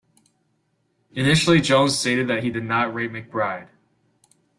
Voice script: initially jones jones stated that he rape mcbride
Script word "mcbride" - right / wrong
right